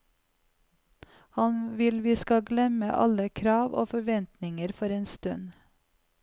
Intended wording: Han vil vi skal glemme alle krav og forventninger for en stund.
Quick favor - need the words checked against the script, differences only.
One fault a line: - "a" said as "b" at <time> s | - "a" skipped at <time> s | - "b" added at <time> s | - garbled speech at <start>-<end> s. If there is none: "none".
none